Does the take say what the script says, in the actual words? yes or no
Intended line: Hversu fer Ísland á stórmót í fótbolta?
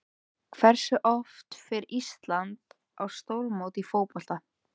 no